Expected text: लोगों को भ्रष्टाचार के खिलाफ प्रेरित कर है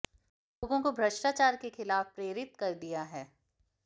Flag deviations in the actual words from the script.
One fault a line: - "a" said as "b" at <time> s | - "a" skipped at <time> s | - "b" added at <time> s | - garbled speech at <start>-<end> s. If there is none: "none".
- "दिया" added at 2.8 s